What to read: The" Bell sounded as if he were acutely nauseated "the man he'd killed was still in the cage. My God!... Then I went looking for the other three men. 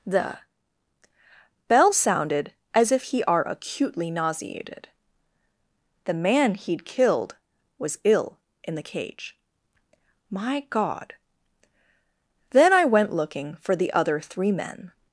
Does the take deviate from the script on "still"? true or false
true